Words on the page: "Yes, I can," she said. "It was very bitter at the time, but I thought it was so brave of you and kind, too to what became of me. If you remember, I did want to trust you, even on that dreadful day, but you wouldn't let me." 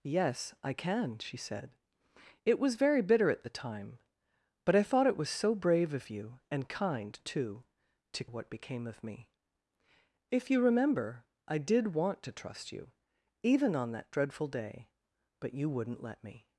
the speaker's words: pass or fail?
pass